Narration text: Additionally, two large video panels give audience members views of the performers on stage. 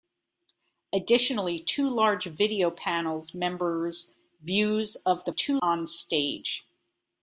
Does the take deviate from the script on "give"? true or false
true